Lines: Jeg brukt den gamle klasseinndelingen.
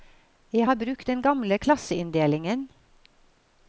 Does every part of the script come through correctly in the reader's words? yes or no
no